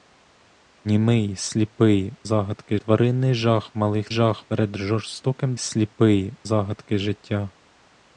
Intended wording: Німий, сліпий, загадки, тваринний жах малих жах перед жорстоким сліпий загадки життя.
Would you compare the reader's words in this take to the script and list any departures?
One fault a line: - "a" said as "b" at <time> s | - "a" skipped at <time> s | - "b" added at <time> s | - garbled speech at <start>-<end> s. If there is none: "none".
none